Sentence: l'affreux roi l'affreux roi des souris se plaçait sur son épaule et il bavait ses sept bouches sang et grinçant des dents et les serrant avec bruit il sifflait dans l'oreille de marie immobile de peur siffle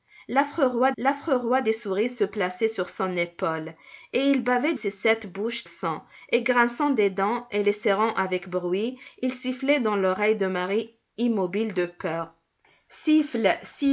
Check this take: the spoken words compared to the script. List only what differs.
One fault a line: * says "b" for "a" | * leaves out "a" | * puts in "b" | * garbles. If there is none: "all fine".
all fine